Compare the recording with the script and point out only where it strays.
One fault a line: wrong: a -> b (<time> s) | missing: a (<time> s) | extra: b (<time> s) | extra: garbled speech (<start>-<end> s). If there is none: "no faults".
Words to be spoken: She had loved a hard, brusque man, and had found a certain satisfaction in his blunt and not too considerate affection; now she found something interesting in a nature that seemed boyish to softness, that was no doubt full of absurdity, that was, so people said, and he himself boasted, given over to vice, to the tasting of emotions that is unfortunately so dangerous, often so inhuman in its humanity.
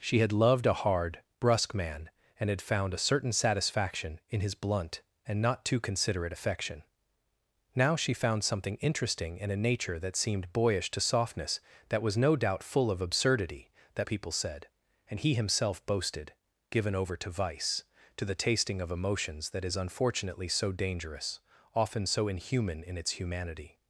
missing: was so (14.1 s)